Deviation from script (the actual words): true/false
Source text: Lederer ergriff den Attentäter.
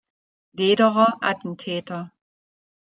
true